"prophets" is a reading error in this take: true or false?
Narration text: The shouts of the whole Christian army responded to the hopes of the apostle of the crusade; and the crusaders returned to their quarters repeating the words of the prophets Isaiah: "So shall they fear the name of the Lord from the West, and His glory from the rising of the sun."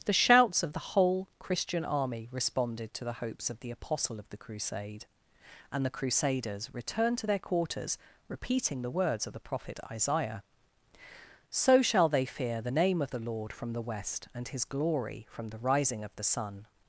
true